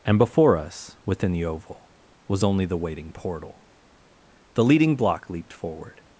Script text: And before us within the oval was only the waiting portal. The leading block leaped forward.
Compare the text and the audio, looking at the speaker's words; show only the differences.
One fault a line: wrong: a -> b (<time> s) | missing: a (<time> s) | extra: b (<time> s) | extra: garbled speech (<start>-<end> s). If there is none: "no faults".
no faults